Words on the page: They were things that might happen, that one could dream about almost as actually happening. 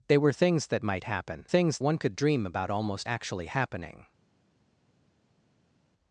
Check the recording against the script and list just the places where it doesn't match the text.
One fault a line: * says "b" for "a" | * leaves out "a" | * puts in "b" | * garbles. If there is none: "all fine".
* says "things" for "that"
* leaves out "as"